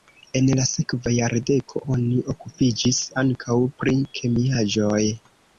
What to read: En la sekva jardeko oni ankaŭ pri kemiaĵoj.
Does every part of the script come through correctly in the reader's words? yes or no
no